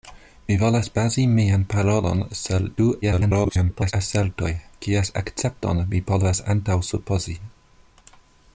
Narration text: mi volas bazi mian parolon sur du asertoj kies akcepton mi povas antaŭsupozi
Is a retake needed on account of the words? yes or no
yes